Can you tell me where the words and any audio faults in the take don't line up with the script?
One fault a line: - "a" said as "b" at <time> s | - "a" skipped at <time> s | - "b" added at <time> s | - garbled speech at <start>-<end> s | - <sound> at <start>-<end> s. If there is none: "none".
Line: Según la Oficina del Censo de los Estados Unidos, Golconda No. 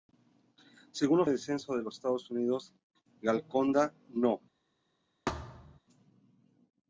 - "Oficina" skipped at 1.2 s
- thud at 5.3-5.8 s